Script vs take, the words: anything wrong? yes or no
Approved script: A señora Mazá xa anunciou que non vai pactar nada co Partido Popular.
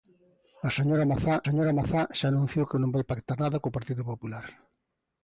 yes